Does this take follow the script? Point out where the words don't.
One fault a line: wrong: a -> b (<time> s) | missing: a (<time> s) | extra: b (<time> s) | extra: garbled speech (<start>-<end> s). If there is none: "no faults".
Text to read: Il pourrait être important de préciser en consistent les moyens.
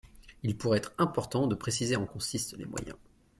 no faults